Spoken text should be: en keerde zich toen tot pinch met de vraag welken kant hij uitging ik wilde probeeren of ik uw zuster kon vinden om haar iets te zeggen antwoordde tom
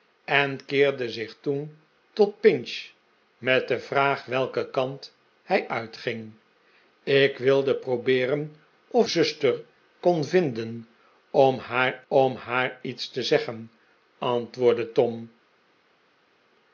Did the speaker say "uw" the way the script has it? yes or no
no